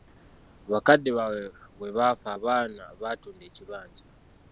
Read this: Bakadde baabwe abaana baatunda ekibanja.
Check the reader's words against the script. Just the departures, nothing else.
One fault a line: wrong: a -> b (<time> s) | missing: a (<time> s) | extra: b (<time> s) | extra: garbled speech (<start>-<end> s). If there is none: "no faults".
extra: bwe baafa (1.8 s)